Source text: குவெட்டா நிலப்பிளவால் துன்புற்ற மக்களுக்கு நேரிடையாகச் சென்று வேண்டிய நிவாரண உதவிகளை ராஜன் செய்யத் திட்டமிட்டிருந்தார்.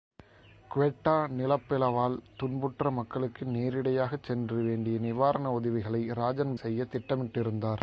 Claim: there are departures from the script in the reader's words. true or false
false